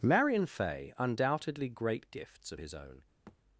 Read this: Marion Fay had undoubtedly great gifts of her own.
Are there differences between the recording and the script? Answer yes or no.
yes